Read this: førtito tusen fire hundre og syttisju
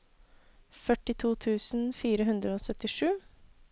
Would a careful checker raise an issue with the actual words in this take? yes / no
no